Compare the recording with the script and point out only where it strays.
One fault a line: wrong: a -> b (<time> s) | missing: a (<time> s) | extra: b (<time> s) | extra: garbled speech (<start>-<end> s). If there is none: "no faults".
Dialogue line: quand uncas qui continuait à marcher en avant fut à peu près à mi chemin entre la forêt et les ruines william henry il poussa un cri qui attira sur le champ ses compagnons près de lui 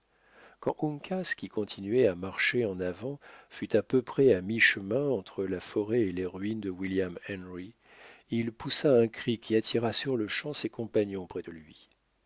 extra: de (6.6 s)